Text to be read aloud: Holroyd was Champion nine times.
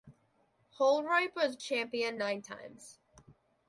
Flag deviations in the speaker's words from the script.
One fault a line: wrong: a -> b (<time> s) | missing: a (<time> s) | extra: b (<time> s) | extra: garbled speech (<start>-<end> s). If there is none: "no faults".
no faults